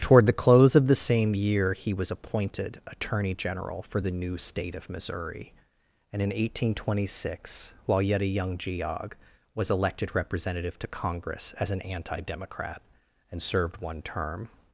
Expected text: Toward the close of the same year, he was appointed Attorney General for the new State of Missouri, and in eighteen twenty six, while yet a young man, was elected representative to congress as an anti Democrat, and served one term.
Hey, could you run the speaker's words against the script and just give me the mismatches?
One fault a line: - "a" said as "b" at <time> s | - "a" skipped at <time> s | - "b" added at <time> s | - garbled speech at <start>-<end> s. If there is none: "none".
- "man" said as "geog" at 8.6 s